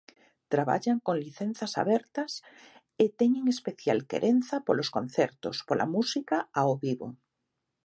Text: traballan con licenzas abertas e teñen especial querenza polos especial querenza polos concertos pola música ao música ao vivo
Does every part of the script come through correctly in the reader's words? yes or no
no